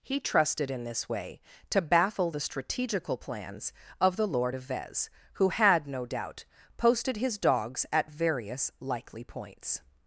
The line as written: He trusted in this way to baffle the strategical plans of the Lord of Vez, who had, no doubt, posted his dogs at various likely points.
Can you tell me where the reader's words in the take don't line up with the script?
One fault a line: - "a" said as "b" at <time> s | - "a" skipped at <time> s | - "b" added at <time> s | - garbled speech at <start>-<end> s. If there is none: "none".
none